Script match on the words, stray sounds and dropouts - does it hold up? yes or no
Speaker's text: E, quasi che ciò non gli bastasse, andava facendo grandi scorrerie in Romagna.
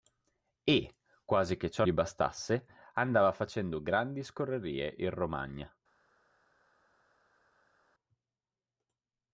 no